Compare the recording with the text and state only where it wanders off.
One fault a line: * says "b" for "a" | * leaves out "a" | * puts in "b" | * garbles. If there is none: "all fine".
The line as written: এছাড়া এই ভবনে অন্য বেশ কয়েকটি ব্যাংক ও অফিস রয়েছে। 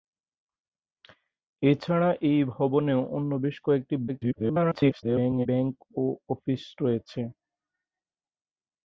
* garbles